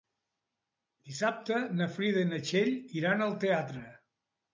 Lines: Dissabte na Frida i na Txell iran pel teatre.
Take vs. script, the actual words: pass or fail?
fail